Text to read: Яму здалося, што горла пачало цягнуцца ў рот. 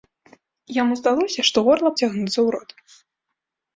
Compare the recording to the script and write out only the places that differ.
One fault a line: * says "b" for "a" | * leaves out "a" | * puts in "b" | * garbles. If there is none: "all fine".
* leaves out "пачало"